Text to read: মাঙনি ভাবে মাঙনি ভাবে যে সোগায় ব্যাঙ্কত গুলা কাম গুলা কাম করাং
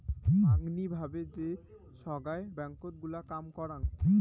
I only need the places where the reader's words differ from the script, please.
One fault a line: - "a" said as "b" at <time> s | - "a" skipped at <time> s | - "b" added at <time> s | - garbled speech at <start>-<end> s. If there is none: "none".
- "মাঙনি ভাবে" skipped at 1.2 s
- "গুলা কাম" skipped at 3.4 s